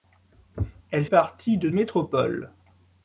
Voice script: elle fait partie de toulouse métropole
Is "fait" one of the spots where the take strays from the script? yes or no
yes